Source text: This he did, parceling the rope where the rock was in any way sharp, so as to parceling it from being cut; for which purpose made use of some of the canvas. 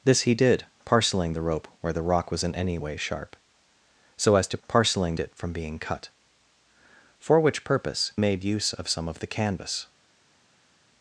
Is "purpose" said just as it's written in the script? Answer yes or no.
yes